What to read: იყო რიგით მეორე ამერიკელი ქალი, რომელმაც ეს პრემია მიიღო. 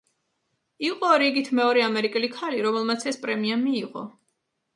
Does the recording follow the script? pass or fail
pass